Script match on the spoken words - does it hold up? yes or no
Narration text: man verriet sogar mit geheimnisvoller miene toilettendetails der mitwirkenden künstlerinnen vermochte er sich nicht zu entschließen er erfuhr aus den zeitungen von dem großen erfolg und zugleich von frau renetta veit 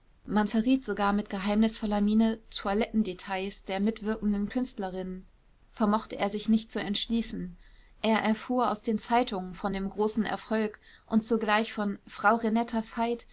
yes